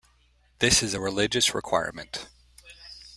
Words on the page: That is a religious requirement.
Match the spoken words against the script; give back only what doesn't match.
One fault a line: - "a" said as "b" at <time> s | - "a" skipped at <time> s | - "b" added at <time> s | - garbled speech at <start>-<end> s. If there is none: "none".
- "That" said as "This" at 0.6 s